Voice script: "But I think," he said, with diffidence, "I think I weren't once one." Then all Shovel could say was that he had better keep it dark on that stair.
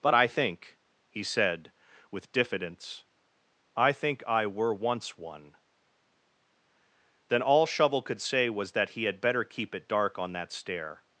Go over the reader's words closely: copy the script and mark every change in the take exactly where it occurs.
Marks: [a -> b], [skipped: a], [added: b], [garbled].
"But I think," he said, with diffidence, "I think I [weren't -> were] once one." Then all Shovel could say was that he had better keep it dark on that stair.